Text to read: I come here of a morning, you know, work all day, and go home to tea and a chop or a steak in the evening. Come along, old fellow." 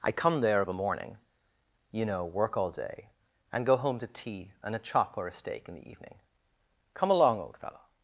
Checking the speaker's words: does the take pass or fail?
fail